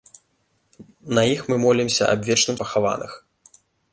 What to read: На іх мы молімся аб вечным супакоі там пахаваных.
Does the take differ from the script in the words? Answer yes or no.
yes